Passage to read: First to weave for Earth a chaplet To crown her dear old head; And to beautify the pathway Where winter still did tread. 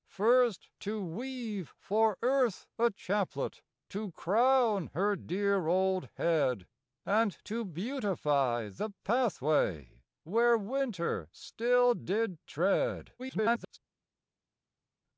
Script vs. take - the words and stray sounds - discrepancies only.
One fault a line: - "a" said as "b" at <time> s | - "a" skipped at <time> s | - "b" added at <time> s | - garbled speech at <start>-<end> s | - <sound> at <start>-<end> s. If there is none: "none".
- garbled speech at 13.2-13.8 s